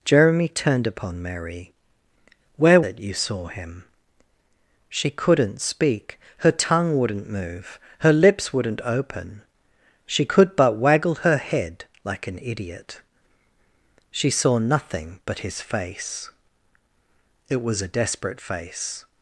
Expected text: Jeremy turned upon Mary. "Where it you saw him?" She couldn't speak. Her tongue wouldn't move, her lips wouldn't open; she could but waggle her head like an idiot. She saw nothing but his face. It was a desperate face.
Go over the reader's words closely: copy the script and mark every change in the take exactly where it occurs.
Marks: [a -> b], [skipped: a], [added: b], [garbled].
Jeremy turned upon Mary. "Where it you saw him?" She couldn't speak. Her tongue wouldn't move, her lips wouldn't open; she could but waggle her head like an idiot. She saw nothing but his face. It was a desperate face.